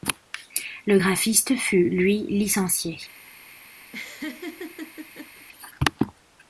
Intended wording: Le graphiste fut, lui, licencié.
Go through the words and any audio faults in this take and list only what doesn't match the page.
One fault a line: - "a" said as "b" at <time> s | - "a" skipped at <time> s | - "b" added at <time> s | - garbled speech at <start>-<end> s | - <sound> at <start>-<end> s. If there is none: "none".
- laugh at 3.9-5.5 s